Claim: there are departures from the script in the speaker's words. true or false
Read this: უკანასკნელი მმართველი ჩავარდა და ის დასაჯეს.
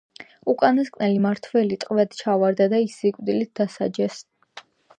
true